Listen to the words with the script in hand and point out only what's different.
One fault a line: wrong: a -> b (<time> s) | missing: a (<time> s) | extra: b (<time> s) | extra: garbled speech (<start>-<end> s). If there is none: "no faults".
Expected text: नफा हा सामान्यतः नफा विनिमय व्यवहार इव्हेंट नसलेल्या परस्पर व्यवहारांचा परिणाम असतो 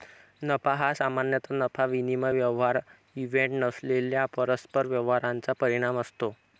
no faults